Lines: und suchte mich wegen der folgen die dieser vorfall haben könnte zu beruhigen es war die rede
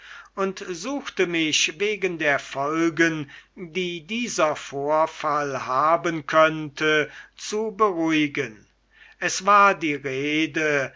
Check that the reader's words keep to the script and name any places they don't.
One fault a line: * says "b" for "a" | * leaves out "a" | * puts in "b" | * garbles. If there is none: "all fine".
all fine